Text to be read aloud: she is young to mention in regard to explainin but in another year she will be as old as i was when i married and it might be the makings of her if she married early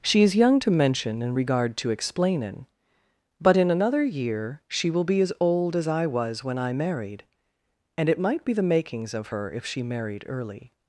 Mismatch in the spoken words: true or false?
false